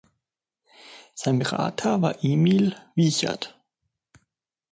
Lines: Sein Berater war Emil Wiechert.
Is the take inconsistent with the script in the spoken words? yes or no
no